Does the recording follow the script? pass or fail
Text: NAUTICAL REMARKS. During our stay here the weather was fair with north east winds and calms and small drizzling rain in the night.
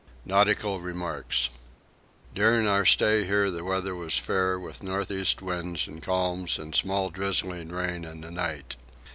pass